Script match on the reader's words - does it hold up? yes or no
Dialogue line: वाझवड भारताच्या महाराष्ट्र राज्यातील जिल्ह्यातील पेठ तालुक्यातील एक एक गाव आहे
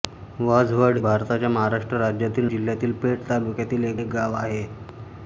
yes